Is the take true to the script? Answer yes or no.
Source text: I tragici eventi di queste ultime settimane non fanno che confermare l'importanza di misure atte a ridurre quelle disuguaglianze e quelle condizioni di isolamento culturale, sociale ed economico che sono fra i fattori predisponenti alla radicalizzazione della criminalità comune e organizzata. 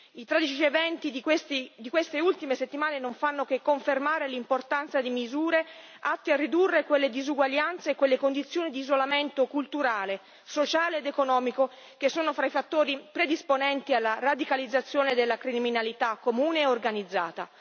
yes